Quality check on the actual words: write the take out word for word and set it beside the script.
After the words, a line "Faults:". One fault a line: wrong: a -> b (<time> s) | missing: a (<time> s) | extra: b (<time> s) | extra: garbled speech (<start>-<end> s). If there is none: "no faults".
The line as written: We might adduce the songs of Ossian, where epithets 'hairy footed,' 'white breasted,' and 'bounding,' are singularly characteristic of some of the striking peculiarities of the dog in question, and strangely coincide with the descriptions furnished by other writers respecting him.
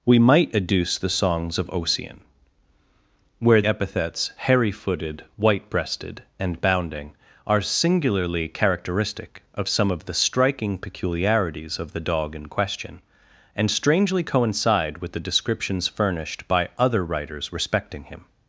We might adduce the songs of Ossian, where epithets 'hairy footed,' 'white breasted,' and 'bounding,' are singularly characteristic of some of the striking peculiarities of the dog in question, and strangely coincide with the descriptions furnished by other writers respecting him.
Faults:
no faults